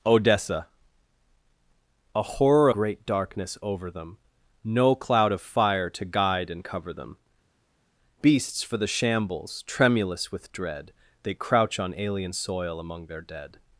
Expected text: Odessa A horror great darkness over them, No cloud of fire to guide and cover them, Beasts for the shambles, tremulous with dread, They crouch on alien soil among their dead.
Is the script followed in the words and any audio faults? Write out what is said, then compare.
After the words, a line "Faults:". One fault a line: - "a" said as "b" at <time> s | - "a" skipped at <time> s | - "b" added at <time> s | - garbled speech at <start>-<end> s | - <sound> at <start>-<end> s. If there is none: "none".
Odessa A horror great darkness over them, No cloud of fire to guide and cover them, Beasts for the shambles, tremulous with dread, They crouch on alien soil among their dead.
Faults:
none